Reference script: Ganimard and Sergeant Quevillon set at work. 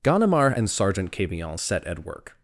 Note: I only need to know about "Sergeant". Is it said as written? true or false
true